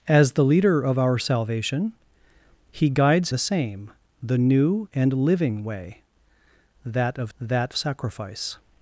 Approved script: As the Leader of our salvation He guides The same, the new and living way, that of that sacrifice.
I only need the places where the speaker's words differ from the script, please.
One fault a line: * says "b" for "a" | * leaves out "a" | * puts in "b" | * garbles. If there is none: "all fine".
all fine